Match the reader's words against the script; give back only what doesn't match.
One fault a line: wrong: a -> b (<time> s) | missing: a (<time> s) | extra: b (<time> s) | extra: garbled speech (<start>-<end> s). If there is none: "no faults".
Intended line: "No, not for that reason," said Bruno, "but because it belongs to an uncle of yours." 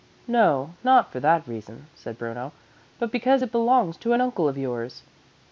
no faults